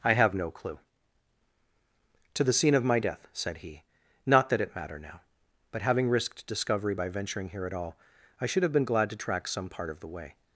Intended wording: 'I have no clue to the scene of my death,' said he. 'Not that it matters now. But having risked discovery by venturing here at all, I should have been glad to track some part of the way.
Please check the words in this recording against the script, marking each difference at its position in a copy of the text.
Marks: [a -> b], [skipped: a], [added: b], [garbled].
'I have no clue to the scene of my death,' said he. 'Not that it [matters -> matter] now. But having risked discovery by venturing here at all, I should have been glad to track some part of the way.